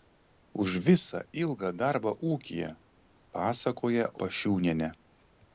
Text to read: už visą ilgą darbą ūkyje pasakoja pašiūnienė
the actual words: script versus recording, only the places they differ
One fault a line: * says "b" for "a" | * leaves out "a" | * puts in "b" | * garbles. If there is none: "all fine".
all fine